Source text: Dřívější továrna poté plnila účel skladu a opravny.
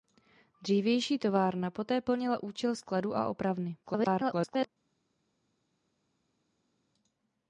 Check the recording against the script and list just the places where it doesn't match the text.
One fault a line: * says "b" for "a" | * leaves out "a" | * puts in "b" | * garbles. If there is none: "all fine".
* garbles